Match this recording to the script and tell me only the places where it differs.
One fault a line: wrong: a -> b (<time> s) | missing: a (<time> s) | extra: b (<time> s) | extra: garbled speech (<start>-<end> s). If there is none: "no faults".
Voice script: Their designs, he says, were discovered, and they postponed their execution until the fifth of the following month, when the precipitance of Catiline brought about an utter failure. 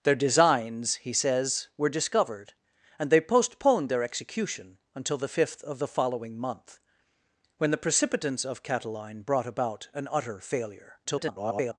extra: garbled speech (11.0-11.8 s)